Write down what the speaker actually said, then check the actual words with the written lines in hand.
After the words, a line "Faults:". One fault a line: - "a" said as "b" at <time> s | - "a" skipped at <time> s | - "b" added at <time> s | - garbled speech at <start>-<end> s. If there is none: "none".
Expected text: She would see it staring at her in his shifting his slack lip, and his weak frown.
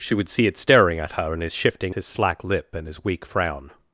She would see it staring at her in his shifting his slack lip, and his weak frown.
Faults:
none